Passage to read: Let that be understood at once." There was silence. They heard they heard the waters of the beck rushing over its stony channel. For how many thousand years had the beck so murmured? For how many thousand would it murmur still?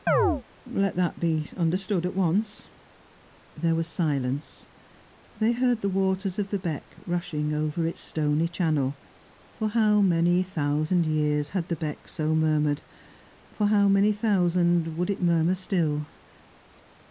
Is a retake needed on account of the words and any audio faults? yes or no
yes